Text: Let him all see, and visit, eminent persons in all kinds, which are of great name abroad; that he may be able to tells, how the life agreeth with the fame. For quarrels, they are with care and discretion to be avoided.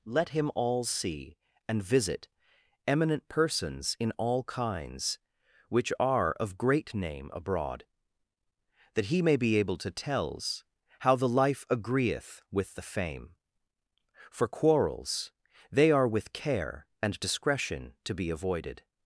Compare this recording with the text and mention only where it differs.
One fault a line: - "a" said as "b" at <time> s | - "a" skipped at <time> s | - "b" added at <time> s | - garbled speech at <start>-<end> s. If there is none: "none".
none